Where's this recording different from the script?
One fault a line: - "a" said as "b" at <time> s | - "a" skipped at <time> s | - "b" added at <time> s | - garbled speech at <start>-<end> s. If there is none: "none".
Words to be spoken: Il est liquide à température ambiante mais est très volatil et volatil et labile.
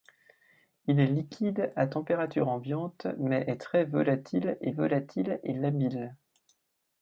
none